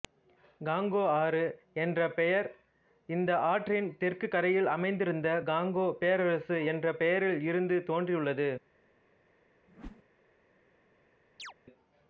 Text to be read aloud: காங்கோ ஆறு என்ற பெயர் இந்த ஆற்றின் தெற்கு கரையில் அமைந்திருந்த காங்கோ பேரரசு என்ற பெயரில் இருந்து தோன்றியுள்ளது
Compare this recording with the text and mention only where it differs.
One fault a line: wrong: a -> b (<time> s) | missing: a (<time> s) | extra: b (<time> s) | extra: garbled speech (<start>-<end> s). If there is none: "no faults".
no faults